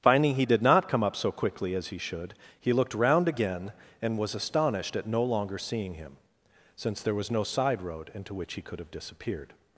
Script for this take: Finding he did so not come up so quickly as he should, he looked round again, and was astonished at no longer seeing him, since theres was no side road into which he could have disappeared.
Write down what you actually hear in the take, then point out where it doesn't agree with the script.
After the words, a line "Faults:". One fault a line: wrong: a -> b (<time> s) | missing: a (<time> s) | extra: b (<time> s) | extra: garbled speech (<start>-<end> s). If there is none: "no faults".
Finding he did not come up so quickly as he should, he looked round again, and was astonished at no longer seeing him, since there was no side road into which he could have disappeared.
Faults:
missing: so (0.6 s)
wrong: theres -> there (7.0 s)